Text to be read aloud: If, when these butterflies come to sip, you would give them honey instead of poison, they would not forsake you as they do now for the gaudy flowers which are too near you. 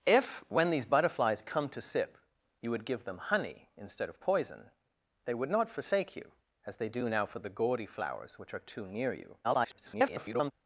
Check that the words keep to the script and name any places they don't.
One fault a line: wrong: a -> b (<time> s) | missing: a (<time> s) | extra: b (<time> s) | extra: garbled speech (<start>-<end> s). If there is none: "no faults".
extra: garbled speech (9.4-10.5 s)